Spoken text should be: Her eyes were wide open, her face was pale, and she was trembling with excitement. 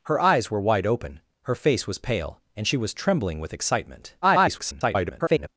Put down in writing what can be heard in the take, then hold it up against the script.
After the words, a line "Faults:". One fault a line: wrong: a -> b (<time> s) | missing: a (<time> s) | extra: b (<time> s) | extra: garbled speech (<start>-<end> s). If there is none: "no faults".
Her eyes were wide open, her face was pale, and she was trembling with excitement. [garbled]
Faults:
extra: garbled speech (4.2-5.5 s)